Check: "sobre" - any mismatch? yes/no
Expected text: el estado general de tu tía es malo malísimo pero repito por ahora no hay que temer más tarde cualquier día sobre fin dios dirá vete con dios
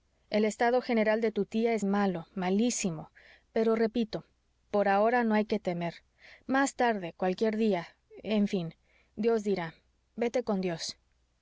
yes